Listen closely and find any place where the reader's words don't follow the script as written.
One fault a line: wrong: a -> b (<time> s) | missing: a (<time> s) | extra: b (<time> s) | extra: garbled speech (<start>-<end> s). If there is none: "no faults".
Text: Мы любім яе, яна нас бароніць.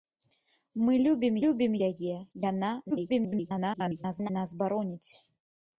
extra: любім (1.4 s)
extra: garbled speech (2.9-4.3 s)